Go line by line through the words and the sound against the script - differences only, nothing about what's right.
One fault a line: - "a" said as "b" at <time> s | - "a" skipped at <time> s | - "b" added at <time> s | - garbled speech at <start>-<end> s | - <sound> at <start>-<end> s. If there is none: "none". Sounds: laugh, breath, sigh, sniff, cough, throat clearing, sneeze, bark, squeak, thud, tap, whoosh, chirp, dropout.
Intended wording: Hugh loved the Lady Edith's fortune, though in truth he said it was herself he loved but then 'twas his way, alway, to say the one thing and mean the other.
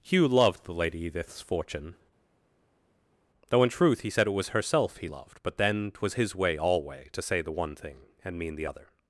none